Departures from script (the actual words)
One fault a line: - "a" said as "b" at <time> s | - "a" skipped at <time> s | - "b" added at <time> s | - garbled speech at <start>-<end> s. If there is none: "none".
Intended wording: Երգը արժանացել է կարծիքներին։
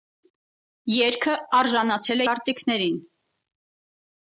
none